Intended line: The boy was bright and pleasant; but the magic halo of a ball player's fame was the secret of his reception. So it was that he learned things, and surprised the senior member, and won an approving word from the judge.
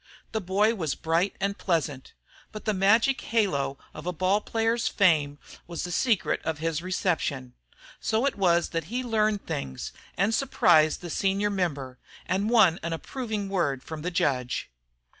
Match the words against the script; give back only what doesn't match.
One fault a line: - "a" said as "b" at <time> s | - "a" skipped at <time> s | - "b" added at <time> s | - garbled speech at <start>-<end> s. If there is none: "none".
none